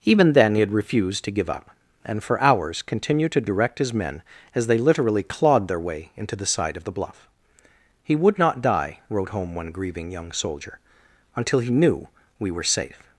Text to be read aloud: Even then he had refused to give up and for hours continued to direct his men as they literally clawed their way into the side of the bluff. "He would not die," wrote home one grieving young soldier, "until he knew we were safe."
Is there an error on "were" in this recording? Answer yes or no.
no